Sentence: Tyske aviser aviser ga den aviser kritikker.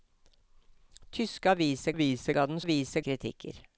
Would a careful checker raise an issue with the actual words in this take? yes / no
no